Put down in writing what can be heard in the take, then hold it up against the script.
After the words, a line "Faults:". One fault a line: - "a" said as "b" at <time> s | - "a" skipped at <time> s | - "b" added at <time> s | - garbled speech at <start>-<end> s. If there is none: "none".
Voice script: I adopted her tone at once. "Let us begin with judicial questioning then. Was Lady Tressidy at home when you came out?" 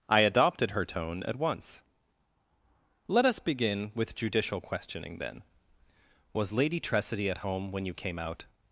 I adopted her tone at once. "Let us begin with judicial questioning then. Was Lady Tressidy at home when you came out?"
Faults:
none